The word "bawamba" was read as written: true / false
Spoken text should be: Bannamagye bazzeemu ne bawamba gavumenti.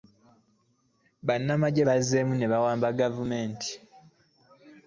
true